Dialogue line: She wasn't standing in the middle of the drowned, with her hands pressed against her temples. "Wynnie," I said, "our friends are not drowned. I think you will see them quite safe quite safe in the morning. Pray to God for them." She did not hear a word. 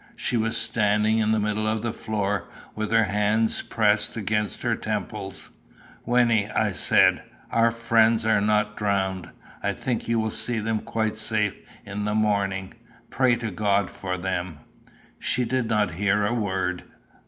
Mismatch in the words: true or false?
true